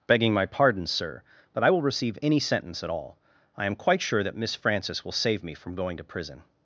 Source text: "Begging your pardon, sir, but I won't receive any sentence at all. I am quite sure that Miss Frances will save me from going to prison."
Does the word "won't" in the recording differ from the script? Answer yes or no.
yes